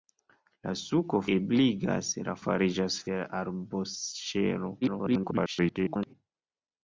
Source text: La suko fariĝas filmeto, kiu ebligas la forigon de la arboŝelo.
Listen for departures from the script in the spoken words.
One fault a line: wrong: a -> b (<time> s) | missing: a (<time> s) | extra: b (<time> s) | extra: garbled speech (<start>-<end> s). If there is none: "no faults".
missing: fariĝas filmeto kiu (1.2 s)
wrong: forigon -> fariĝas (2.4 s)
extra: garbled speech (4.8-6.1 s)